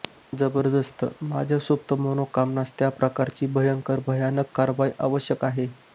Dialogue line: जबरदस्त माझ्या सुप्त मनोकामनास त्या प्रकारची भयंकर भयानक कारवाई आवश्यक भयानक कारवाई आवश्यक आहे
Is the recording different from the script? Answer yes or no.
yes